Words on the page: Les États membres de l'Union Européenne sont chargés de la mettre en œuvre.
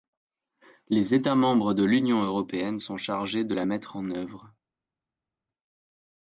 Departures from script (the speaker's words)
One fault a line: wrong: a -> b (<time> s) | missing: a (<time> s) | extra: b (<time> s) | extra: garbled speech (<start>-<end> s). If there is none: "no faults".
no faults